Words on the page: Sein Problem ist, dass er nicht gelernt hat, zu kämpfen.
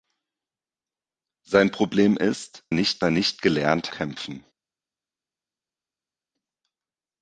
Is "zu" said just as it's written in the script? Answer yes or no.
no